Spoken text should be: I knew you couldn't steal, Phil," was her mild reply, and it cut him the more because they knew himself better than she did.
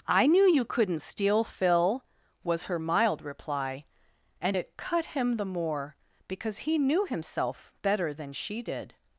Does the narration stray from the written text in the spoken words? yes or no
yes